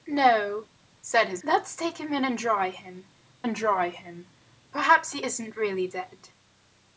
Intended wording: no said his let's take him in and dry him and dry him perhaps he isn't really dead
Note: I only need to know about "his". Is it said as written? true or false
true